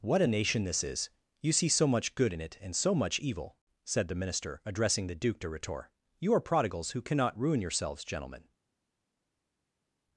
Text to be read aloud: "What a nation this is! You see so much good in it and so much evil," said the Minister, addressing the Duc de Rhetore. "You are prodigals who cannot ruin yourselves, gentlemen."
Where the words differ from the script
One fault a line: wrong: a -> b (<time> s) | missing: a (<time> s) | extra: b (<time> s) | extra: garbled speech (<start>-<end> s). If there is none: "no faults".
no faults